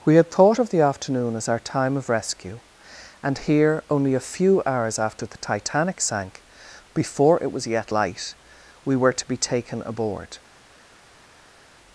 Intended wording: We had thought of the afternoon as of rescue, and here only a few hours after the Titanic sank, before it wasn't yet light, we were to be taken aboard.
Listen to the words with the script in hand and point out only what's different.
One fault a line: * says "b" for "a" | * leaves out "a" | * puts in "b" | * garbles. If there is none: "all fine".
* puts in "our time"
* says "was" for "wasn't"